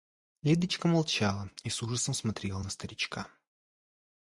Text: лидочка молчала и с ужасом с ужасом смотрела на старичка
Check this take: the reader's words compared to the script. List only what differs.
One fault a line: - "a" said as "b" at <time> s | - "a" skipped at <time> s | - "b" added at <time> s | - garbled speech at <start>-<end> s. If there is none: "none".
- "с ужасом" skipped at 2.1 s